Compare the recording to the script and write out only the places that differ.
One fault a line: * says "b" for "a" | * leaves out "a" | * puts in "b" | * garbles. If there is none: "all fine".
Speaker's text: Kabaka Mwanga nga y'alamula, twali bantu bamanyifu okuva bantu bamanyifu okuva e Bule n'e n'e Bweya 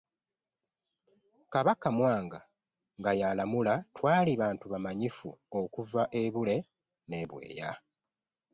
* leaves out "bantu bamanyifu okuva"
* leaves out "n'e"